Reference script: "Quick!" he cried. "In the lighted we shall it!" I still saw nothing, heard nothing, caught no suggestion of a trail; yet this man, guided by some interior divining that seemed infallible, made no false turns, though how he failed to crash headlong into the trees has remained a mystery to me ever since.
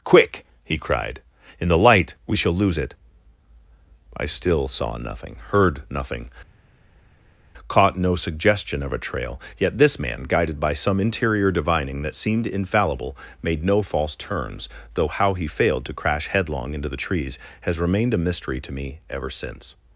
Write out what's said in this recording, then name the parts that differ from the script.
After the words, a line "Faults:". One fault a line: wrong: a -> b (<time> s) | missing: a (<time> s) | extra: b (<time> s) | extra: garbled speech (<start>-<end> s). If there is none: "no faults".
"Quick!" he cried. "In the light we shall lose it!" I still saw nothing, heard nothing, caught no suggestion of a trail; yet this man, guided by some interior divining that seemed infallible, made no false turns, though how he failed to crash headlong into the trees has remained a mystery to me ever since.
Faults:
wrong: lighted -> light (1.8 s)
extra: lose (2.5 s)